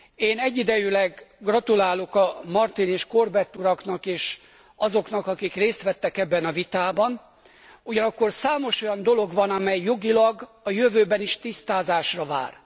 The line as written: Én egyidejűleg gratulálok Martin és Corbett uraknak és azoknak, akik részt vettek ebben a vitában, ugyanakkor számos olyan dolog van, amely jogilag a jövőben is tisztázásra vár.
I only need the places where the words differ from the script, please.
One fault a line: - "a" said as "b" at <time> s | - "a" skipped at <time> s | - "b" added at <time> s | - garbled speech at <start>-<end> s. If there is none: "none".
none